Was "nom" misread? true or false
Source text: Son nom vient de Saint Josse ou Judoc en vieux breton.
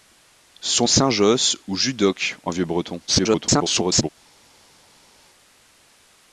true